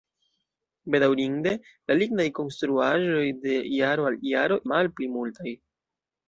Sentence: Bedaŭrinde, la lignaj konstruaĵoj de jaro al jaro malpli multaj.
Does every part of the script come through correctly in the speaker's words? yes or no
yes